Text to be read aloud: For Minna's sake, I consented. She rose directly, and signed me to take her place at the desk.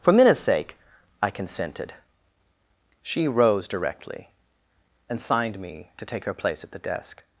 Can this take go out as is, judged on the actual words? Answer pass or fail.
pass